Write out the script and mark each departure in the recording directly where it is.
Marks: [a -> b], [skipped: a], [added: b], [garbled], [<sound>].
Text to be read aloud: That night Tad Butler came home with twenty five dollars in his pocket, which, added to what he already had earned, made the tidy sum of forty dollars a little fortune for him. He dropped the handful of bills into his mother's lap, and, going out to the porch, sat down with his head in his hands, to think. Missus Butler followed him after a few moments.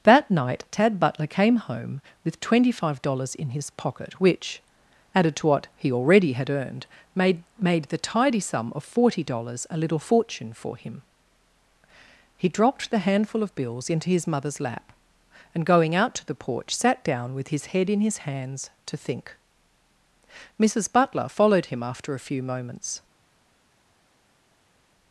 That night Tad Butler came home with twenty five dollars in his pocket, which, added to what he already had earned, made [added: made] the tidy sum of forty dollars a little fortune for him. He dropped the handful of bills into his mother's lap, and, going out to the porch, sat down with his head in his hands, to think. Missus Butler followed him after a few moments.